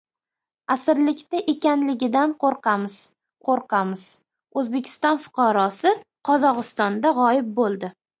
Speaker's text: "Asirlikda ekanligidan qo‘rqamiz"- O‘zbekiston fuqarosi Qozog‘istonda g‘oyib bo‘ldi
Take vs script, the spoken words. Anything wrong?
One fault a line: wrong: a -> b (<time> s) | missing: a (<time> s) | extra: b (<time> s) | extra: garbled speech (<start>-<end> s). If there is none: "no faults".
extra: qo‘rqamiz (3.5 s)